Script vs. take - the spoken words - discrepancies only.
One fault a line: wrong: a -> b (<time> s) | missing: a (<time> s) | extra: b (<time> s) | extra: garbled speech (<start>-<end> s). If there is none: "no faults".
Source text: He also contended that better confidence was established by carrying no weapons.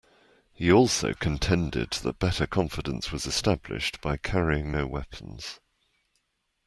no faults